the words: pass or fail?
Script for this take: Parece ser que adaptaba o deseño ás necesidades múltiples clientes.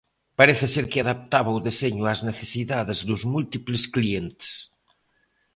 fail